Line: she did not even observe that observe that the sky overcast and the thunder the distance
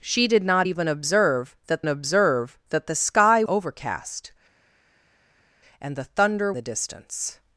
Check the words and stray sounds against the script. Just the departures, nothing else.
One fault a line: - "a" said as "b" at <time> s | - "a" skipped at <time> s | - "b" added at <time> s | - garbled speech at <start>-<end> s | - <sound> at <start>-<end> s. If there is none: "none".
none